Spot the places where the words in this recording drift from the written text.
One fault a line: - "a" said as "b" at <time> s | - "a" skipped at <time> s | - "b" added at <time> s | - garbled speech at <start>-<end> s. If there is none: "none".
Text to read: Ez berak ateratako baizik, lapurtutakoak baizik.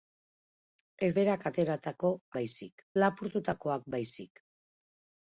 none